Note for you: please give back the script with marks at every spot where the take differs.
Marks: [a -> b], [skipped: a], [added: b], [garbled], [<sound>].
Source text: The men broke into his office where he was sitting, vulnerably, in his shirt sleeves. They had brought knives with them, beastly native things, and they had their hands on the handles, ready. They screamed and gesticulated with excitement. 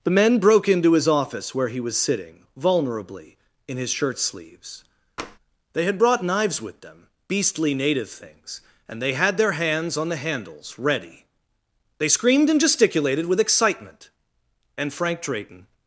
The men broke into his office where he was sitting, vulnerably, in his shirt sleeves. [tap] They had brought knives with them, beastly native things, and they had their hands on the handles, ready. They screamed and gesticulated with excitement. [added: And Frank Drayton]